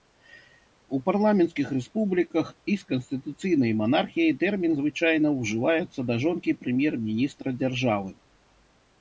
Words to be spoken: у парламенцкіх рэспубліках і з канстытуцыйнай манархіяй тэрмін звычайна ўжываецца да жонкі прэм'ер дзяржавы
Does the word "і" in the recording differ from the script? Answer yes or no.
no